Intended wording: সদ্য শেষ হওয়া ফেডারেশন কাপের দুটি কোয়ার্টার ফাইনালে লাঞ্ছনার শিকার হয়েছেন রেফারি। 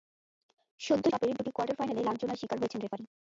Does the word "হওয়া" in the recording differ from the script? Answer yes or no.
yes